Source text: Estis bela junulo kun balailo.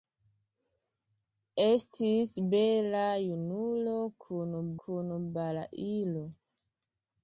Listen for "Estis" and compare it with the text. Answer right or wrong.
right